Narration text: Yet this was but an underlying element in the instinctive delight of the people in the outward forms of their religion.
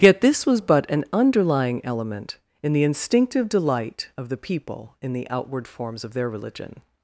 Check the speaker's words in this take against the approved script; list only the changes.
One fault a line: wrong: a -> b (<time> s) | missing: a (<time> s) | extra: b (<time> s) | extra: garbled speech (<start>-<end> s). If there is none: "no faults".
no faults